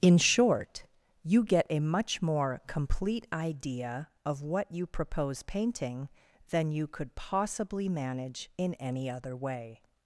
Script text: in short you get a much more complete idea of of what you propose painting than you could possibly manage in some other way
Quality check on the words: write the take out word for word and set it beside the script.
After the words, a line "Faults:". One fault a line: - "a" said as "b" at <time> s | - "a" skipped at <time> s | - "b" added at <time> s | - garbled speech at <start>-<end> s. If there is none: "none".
in short you get a much more complete idea of what you propose painting than you could possibly manage in any other way
Faults:
- "of" skipped at 4.4 s
- "some" said as "any" at 8.8 s